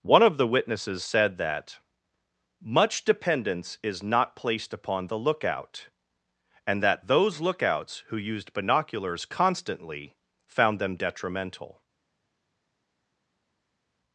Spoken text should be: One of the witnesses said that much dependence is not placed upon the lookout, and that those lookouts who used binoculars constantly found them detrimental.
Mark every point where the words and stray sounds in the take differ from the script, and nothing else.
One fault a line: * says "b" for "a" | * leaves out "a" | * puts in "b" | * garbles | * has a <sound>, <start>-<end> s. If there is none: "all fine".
all fine